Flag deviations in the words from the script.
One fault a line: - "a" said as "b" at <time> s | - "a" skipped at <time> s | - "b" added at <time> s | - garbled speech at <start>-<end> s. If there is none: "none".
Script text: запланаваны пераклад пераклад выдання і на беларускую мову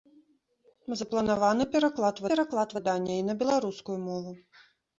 none